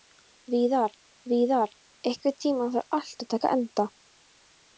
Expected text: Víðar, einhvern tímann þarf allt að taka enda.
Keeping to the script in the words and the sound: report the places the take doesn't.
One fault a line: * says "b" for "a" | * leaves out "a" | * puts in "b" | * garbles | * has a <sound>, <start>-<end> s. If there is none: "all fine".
* puts in "víðar"